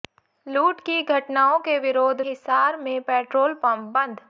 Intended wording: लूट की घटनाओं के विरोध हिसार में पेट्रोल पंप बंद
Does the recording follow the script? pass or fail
pass